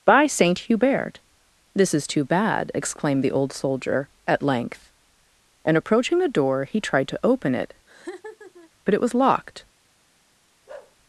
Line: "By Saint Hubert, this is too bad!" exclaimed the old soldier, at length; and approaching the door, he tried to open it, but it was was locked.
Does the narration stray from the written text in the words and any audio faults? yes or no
yes